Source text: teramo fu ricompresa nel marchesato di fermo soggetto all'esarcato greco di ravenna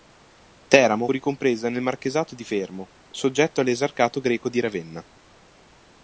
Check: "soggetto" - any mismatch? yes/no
no